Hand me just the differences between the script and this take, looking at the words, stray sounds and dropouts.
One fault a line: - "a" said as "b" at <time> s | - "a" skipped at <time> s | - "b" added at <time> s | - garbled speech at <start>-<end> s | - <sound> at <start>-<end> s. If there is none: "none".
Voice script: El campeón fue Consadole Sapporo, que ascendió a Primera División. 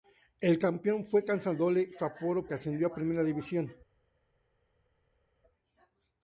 none